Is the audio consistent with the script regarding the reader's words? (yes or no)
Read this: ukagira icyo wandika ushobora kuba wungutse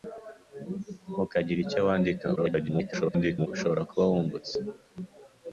no